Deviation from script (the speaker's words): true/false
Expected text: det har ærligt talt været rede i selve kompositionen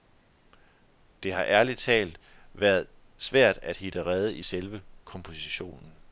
true